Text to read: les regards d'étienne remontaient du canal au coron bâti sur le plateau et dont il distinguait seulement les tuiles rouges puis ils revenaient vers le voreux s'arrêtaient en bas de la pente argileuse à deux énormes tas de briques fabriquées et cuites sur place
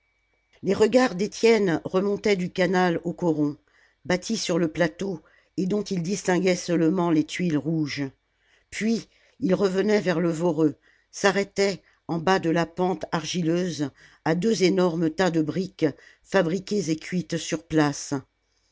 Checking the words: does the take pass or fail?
pass